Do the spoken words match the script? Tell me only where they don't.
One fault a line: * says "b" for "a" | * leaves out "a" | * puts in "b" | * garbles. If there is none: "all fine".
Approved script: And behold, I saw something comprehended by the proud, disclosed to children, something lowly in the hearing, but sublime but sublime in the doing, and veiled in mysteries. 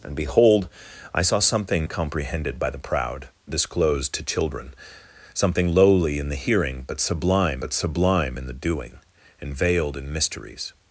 all fine